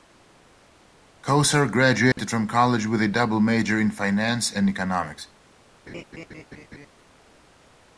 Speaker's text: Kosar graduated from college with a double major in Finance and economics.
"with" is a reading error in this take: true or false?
false